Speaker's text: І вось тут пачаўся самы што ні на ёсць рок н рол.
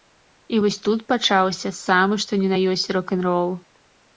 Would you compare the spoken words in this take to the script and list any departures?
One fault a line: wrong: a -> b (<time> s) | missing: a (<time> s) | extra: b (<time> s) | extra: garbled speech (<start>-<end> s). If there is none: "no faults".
no faults